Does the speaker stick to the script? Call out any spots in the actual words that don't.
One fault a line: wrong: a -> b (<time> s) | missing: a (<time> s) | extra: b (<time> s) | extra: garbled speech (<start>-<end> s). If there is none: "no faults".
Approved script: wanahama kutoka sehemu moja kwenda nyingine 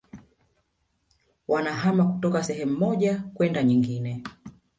no faults